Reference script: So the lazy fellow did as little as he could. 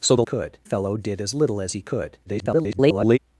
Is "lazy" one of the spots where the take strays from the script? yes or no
yes